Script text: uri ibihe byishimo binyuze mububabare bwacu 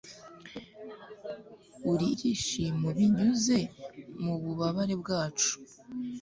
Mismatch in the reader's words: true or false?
true